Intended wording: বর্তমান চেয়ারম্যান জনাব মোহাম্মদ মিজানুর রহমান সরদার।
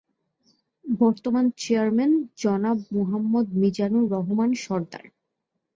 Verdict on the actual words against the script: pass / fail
pass